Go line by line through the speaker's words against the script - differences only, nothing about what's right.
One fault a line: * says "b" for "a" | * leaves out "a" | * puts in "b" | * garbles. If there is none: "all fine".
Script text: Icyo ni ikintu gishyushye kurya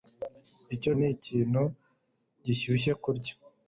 all fine